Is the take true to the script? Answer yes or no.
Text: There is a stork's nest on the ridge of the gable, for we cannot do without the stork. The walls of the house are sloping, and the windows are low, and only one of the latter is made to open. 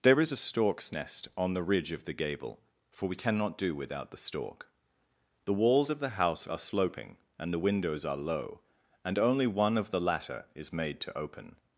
yes